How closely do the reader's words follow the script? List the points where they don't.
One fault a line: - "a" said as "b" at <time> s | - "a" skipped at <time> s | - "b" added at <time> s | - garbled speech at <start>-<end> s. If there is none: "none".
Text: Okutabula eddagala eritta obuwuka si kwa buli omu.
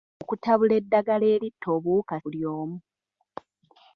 - "si kwa" skipped at 2.1 s